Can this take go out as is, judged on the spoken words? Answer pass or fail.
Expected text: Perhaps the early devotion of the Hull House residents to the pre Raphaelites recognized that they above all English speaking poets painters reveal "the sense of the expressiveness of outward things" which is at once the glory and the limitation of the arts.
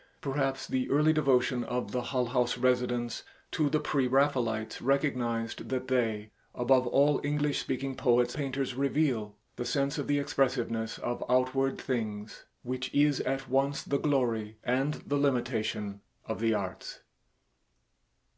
pass